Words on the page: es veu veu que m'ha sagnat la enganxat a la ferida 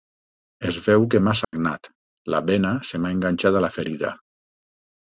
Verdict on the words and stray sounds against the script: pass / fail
fail